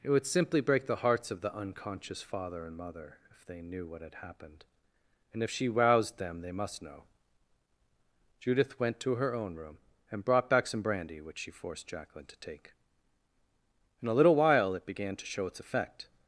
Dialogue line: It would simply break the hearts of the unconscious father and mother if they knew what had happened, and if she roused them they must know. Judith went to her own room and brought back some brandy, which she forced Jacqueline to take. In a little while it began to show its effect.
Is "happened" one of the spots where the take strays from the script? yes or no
no